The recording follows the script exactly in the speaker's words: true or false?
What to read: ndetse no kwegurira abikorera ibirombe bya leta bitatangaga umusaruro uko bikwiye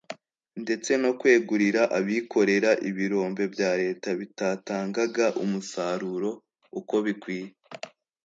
true